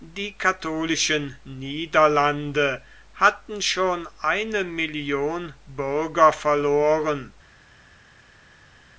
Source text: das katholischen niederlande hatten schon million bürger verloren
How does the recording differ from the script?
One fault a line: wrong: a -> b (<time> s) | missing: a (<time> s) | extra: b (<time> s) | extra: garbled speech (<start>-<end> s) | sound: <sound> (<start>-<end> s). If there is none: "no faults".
wrong: das -> die (0.0 s)
extra: eine (4.2 s)